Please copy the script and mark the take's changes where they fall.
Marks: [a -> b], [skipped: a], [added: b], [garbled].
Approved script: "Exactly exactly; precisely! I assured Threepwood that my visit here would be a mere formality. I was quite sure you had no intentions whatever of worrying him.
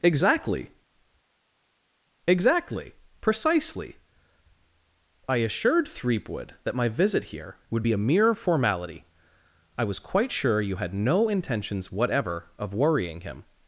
"Exactly exactly; precisely! I assured Threepwood that my visit here would be a mere formality. I was quite sure you had no intentions whatever of worrying him.